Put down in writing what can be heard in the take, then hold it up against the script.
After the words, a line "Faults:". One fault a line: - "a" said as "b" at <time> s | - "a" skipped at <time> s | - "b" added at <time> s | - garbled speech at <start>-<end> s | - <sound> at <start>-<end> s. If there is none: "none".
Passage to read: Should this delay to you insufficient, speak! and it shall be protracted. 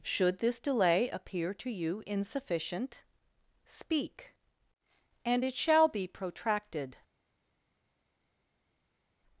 Should this delay appear to you insufficient, speak! and it shall be protracted.
Faults:
- "appear" added at 1.1 s